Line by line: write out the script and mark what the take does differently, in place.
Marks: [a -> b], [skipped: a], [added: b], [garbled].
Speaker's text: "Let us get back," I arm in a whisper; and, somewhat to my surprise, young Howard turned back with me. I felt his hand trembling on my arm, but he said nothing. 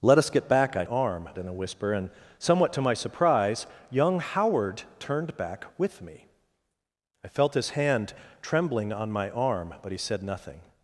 "Let us get back," I arm in a whisper; and, somewhat to my surprise, young Howard turned back with me. I felt his hand trembling on my arm, but he said nothing.